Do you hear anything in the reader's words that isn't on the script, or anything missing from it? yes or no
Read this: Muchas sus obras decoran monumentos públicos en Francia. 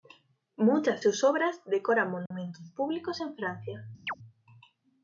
no